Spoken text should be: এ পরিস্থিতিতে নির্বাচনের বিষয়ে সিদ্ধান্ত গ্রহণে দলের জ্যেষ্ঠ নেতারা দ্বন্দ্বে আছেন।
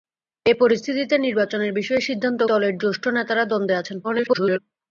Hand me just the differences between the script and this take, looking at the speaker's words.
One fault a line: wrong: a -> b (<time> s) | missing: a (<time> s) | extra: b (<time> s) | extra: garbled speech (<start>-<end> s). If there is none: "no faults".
missing: গ্রহণে (2.4 s)
extra: garbled speech (4.0-4.6 s)